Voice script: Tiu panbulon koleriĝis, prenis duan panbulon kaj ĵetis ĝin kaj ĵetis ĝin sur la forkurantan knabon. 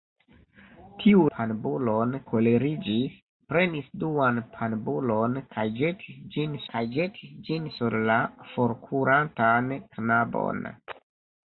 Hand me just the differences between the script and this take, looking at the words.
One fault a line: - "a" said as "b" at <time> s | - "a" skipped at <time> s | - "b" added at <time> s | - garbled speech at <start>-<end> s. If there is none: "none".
none